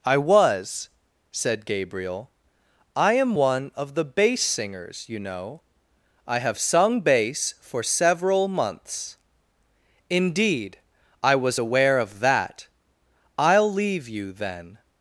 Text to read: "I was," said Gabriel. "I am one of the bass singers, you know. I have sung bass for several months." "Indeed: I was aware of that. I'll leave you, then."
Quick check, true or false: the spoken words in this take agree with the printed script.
true